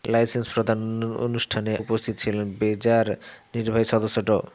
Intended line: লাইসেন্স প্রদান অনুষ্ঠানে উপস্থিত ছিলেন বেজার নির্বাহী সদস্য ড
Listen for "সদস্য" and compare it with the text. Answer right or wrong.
right